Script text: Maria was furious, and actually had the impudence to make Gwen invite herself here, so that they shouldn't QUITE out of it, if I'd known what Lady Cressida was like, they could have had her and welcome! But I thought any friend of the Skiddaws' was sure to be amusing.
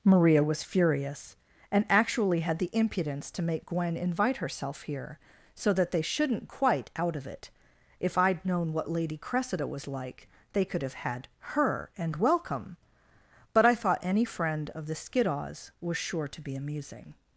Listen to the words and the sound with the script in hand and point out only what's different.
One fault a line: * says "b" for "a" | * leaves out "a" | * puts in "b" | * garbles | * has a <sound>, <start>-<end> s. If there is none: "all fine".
all fine